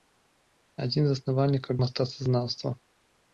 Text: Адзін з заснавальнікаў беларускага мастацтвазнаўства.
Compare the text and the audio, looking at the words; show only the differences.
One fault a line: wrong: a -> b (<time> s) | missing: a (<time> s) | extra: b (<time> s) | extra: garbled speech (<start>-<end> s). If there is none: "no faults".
missing: беларускага (1.8 s)